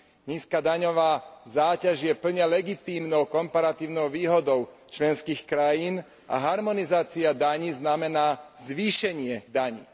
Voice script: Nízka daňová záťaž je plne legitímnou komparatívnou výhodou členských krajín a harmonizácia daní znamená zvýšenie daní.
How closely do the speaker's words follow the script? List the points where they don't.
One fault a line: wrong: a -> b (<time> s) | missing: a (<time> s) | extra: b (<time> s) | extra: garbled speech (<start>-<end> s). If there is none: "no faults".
no faults